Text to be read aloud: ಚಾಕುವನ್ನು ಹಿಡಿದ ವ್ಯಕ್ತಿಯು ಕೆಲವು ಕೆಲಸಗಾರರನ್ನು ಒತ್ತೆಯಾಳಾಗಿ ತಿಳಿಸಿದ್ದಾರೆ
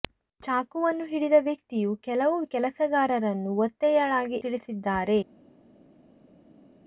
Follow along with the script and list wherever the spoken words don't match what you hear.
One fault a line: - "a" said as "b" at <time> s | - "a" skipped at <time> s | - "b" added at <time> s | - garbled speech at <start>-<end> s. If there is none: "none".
none